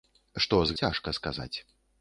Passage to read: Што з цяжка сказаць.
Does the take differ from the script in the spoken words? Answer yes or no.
no